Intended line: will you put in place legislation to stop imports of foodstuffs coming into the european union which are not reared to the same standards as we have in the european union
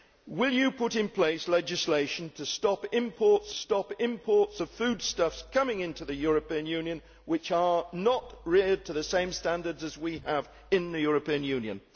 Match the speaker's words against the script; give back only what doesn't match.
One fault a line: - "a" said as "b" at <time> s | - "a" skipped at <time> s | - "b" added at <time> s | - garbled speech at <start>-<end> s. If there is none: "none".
- "stop imports" added at 3.5 s